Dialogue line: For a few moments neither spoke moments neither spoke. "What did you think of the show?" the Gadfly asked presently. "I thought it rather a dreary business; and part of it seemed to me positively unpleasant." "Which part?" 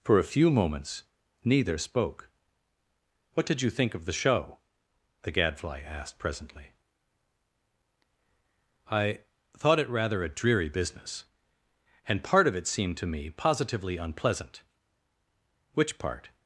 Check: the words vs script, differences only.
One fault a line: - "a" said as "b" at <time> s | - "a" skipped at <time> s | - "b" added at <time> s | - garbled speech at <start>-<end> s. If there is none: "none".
- "moments neither spoke" skipped at 2.3 s